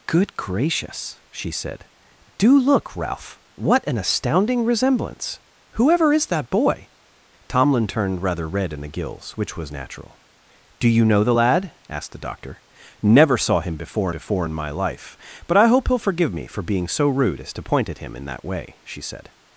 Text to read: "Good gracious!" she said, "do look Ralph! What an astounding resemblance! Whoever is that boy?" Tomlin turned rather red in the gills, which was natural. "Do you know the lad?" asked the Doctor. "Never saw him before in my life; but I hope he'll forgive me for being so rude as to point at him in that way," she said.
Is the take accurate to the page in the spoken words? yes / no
no